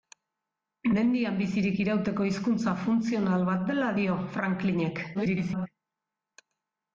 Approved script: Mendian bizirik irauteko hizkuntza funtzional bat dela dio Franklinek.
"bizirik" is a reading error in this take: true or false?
false